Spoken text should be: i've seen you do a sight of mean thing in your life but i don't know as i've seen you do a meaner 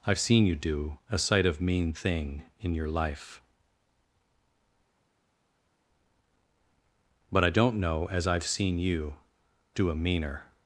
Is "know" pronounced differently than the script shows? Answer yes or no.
no